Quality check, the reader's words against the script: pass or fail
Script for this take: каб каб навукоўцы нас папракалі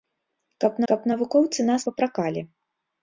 pass